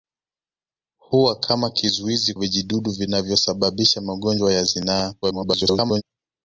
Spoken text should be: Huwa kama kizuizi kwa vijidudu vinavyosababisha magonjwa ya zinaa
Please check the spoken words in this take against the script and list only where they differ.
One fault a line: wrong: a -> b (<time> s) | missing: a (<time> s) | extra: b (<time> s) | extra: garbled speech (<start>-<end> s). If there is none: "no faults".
missing: kwa (2.3 s)
extra: garbled speech (5.2-6.0 s)